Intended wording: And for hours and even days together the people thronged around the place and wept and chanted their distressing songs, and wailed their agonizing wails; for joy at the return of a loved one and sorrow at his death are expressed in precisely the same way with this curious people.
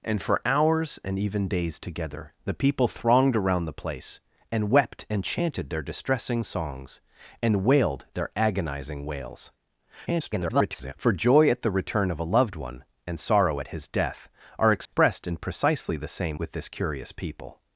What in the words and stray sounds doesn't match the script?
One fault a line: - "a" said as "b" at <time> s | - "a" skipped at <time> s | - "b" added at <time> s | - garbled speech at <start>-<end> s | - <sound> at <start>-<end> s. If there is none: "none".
- garbled speech at 10.1-10.9 s
- dropout at 14.9-14.9 s
- "way" skipped at 16.4 s